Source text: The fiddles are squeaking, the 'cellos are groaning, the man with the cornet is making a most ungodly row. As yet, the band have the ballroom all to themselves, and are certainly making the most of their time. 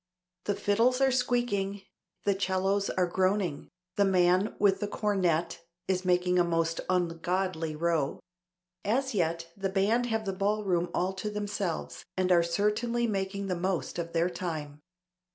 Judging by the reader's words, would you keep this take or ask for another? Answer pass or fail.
pass